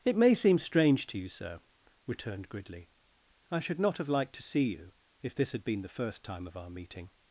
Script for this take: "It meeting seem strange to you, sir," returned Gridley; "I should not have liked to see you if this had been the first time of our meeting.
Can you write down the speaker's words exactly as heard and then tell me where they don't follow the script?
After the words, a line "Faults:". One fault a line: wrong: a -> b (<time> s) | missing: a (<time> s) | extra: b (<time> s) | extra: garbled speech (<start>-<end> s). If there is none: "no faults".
"It may seem strange to you, sir," returned Gridley; "I should not have liked to see you if this had been the first time of our meeting.
Faults:
wrong: meeting -> may (0.1 s)